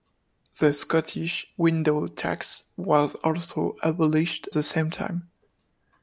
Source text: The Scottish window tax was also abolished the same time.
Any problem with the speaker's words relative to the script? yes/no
no